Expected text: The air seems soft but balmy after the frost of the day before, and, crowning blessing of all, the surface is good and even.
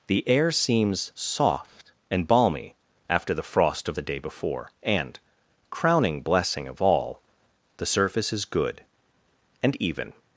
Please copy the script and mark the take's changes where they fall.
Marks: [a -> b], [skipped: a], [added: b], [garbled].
The air seems soft [but -> and] balmy after the frost of the day before, and, crowning blessing of all, the surface is good and even.